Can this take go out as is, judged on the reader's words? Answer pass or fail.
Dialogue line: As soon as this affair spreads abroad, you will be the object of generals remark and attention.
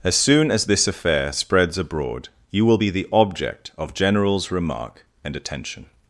pass